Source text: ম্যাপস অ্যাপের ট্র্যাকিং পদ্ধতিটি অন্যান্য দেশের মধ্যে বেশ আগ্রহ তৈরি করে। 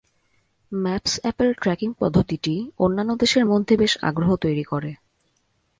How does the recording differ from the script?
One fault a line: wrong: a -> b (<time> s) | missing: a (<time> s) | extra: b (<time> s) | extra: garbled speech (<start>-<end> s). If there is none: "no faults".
no faults